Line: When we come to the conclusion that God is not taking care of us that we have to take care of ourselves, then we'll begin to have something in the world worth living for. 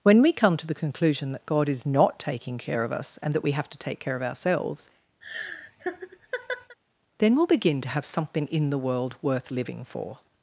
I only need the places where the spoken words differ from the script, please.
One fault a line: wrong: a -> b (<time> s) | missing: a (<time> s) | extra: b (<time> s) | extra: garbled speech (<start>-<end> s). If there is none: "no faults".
extra: and (3.2 s)